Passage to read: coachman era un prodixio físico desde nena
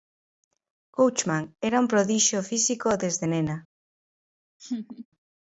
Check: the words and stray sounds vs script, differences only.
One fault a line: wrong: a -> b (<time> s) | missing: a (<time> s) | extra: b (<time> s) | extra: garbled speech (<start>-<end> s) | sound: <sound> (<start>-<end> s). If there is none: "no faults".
sound: laugh (4.6-5.1 s)